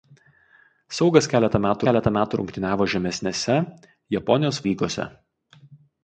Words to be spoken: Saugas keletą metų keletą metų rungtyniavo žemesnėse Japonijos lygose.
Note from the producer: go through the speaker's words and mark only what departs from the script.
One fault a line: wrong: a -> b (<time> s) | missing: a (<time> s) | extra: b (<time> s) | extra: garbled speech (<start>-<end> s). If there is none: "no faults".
no faults